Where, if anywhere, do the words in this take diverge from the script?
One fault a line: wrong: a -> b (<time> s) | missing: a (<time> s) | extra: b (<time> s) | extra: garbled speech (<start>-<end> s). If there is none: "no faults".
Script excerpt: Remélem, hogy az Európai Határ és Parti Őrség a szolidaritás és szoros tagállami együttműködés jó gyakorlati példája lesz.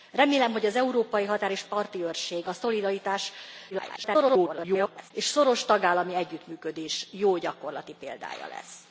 extra: garbled speech (3.7-5.1 s)